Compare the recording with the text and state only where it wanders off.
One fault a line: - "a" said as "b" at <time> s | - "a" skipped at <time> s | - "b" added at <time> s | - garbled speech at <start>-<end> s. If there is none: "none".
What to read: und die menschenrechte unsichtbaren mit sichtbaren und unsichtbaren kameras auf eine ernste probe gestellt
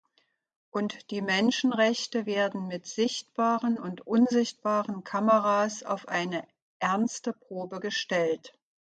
- "unsichtbaren" said as "werden" at 2.2 s